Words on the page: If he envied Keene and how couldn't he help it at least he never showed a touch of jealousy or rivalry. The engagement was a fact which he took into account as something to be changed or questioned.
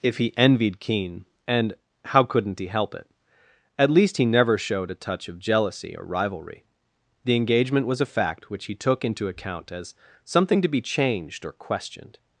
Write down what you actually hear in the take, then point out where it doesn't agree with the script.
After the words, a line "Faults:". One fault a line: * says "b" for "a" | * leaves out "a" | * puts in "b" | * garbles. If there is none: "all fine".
If he envied Keene and how couldn't he help it at least he never showed a touch of jealousy or rivalry. The engagement was a fact which he took into account as something to be changed or questioned.
Faults:
all fine